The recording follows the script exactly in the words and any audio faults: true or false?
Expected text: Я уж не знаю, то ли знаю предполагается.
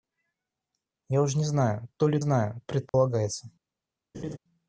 false